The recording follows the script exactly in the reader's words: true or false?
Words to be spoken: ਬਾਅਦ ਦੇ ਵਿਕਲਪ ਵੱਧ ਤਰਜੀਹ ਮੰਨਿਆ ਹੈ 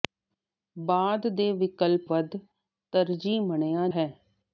true